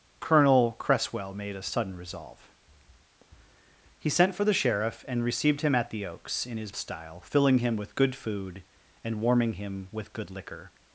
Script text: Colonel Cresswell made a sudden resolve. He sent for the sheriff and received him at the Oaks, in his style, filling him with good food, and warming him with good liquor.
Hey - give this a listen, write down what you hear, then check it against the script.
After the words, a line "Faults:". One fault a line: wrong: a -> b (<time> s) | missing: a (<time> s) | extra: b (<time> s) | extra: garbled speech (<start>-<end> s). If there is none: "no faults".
Colonel Cresswell made a sudden resolve. He sent for the sheriff and received him at the Oaks, in his style, filling him with good food, and warming him with good liquor.
Faults:
no faults